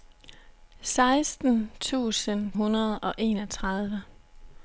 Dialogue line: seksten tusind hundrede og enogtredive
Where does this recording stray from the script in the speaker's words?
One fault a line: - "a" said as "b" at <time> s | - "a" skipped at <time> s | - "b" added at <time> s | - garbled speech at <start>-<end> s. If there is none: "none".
none